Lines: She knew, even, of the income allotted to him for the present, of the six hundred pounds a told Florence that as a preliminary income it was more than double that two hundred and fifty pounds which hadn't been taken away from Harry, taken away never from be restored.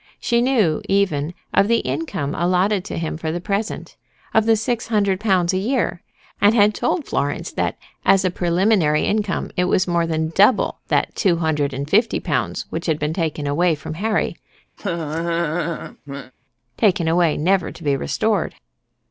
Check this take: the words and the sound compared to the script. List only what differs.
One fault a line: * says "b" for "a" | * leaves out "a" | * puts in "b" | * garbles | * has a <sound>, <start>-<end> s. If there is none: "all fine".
* puts in "year and had"
* says "had" for "hadn't"
* has a laugh, 14.8-16.3 s
* says "to" for "from"